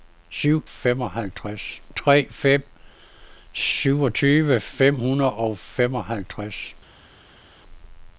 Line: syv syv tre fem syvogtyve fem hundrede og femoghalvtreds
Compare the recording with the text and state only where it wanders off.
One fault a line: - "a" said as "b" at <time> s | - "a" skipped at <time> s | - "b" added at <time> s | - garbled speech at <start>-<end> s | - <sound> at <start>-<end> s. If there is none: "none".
- "syv" said as "femoghalvtreds" at 0.6 s